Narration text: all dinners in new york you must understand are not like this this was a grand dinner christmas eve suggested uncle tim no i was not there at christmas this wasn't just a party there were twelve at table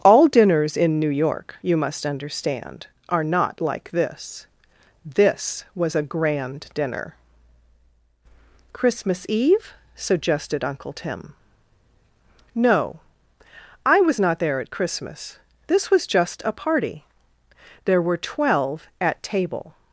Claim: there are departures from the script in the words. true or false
true